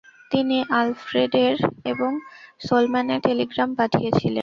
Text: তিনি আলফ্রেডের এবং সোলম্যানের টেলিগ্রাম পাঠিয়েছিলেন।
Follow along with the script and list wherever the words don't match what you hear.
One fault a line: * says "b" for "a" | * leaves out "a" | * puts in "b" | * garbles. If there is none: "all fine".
all fine